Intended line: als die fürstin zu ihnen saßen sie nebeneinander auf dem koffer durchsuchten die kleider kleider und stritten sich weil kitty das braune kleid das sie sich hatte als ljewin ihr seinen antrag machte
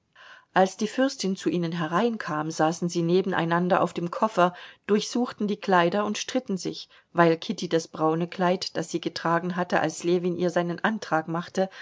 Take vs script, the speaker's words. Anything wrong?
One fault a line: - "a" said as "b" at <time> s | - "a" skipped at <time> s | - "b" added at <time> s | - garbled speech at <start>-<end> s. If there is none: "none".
- "hereinkam" added at 1.7 s
- "kleider" skipped at 6.0 s
- "sich" said as "getragen" at 9.0 s